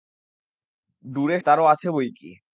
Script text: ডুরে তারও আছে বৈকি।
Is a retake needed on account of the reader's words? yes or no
no